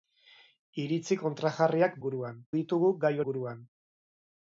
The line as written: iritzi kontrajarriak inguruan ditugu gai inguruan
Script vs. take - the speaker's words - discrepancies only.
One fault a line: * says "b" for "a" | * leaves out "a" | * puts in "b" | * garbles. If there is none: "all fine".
all fine